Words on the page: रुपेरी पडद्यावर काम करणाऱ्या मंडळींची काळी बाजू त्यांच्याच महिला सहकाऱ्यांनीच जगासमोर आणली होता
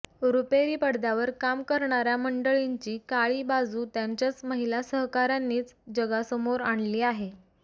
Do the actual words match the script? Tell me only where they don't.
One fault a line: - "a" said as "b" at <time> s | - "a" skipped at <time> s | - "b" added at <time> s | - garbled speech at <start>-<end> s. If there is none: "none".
- "होता" said as "आहे" at 7.0 s